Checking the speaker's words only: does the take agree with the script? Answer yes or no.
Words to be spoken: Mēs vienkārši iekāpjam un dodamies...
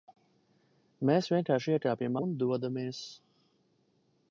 yes